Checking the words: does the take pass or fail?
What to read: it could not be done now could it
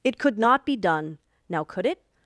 pass